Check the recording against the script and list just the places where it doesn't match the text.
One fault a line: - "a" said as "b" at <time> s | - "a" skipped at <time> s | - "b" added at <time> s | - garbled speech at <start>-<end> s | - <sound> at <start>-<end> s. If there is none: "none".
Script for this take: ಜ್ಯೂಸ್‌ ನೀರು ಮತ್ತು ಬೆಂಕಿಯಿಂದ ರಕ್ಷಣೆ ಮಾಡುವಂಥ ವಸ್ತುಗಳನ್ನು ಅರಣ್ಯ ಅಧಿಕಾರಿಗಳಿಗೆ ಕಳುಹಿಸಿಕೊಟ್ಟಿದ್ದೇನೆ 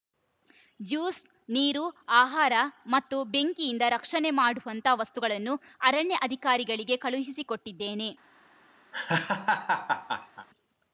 - "ಆಹಾರ" added at 2.2 s
- laugh at 8.9-10.5 s